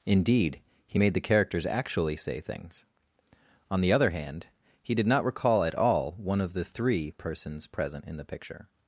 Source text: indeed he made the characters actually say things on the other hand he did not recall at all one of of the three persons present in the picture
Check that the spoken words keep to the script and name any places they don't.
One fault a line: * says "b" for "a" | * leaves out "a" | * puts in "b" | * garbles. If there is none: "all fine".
* leaves out "of"